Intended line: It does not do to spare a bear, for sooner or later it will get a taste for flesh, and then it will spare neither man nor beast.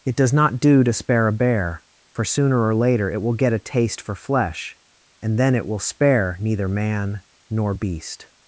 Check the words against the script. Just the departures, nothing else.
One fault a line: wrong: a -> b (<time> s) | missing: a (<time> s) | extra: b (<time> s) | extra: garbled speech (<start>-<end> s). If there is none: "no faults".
no faults